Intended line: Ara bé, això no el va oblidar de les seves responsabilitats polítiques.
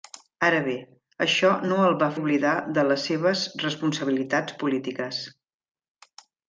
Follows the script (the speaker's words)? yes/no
yes